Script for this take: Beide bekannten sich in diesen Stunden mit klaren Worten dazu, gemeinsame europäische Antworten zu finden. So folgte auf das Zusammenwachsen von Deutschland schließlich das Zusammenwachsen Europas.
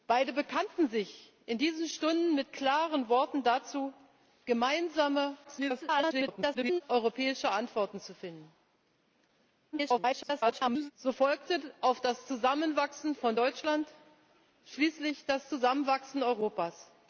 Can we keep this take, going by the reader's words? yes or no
no